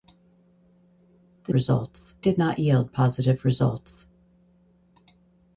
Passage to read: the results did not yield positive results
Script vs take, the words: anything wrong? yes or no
no